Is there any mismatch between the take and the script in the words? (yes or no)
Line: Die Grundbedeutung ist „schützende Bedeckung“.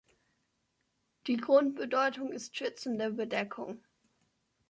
no